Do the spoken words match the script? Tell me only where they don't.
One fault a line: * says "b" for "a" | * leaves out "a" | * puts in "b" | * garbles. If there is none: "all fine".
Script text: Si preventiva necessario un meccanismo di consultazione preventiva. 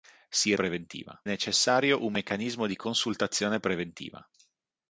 all fine